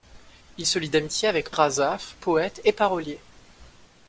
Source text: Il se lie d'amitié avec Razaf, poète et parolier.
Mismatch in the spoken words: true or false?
false